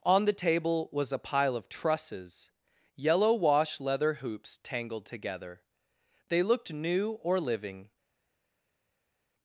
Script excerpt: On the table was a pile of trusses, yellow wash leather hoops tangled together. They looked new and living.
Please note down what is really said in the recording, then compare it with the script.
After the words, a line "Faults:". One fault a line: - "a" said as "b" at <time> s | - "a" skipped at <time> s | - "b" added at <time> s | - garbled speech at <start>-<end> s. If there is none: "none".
On the table was a pile of trusses, yellow wash leather hoops tangled together. They looked new or living.
Faults:
- "and" said as "or" at 7.2 s